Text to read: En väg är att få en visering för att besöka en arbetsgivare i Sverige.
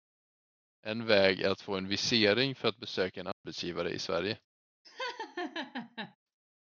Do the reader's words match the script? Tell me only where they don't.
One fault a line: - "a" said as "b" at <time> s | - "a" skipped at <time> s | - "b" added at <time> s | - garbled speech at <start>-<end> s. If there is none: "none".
none